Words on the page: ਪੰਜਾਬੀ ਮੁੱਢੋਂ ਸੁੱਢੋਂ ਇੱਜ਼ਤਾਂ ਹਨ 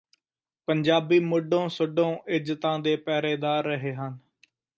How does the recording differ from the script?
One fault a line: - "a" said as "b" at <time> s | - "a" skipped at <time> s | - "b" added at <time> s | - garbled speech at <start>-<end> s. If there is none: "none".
- "ਦੇ ਪਹਿਰੇਦਾਰ ਰਹੇ" added at 2.8 s